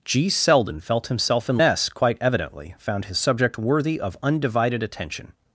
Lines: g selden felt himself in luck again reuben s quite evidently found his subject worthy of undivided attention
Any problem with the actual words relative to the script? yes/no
yes